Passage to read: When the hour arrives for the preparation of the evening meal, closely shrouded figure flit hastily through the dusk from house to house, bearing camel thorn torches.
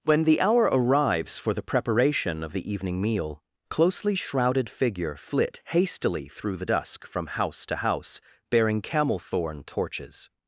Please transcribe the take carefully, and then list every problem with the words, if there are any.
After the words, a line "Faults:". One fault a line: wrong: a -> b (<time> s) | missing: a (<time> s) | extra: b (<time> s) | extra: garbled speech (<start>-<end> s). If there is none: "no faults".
When the hour arrives for the preparation of the evening meal, closely shrouded figure flit hastily through the dusk from house to house, bearing camel thorn torches.
Faults:
no faults